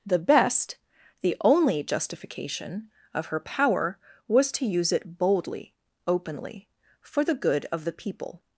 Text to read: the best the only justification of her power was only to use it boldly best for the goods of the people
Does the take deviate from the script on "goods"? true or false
true